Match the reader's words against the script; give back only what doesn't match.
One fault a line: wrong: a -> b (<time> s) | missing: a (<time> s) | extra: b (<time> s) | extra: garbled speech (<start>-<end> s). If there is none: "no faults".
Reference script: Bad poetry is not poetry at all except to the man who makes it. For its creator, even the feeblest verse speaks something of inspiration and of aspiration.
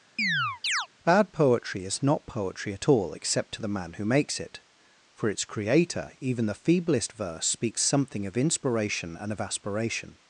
no faults